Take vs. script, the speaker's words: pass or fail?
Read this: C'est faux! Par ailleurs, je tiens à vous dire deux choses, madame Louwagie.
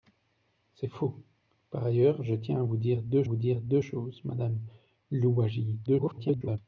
fail